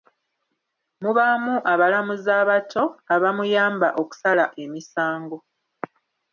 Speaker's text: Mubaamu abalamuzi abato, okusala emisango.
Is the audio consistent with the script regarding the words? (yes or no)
no